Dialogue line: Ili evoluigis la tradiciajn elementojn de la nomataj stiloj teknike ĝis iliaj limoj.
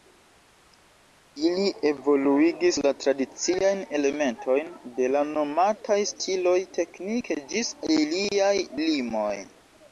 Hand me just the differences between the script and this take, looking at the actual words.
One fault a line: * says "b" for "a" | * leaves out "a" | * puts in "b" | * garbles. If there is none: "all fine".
all fine